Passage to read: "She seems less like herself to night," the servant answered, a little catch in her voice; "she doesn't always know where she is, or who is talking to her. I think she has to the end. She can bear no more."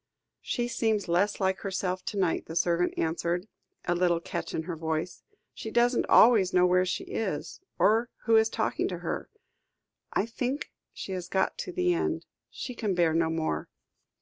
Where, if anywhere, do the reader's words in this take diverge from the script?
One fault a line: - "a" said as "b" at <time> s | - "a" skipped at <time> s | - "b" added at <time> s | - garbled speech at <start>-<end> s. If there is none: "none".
- "got" added at 11.3 s